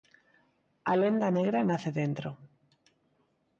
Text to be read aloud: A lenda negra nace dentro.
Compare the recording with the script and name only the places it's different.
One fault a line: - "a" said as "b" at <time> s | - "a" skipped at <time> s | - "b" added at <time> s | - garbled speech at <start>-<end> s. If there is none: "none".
none